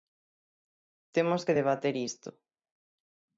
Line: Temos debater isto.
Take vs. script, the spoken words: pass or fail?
fail